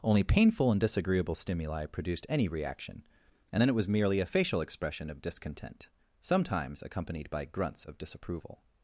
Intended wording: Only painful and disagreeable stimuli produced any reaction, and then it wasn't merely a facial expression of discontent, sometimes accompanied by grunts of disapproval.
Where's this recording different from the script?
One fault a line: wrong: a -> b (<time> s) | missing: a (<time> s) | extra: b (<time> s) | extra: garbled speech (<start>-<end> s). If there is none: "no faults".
wrong: wasn't -> was (3.7 s)